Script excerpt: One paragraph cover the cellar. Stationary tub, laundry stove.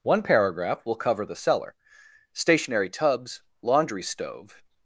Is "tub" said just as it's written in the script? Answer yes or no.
no